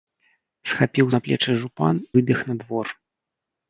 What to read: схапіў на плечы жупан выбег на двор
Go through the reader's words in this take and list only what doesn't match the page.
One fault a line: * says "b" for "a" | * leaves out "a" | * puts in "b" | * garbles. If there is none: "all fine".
all fine